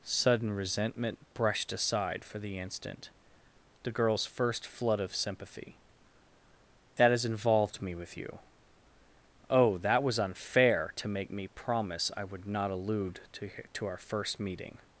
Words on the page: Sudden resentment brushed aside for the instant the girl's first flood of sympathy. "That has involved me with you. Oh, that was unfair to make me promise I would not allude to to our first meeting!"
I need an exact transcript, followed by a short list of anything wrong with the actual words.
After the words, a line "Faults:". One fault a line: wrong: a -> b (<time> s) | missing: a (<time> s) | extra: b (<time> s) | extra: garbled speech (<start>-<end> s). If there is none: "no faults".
Sudden resentment brushed aside for the instant the girl's first flood of sympathy. "That has involved me with you. Oh, that was unfair to make me promise I would not allude to to our first meeting!"
Faults:
no faults